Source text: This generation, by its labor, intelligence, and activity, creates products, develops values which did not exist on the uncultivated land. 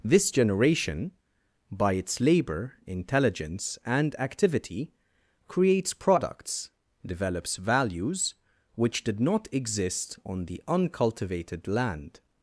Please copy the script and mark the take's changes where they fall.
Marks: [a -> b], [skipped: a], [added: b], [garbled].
This generation, by its labor, intelligence, and activity, creates products, develops values which did not exist on the uncultivated land.